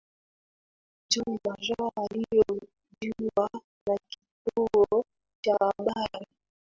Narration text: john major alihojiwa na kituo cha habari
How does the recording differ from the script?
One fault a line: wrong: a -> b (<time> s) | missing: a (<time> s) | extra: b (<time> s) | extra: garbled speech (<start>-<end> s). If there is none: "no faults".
no faults